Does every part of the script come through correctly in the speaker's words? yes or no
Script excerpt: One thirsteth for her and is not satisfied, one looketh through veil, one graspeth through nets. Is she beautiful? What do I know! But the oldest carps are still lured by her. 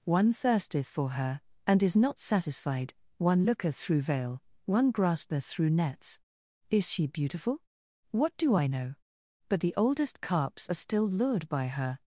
yes